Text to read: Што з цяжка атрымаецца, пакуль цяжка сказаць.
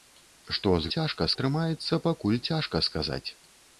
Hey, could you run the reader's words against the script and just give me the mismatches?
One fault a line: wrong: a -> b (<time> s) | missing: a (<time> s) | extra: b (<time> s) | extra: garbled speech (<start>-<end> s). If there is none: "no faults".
no faults